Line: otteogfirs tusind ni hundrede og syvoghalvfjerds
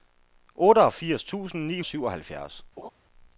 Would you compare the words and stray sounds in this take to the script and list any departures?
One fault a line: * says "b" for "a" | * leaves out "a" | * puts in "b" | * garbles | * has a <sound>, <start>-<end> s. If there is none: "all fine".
* leaves out "hundrede"
* has a laugh, 2.8-2.9 s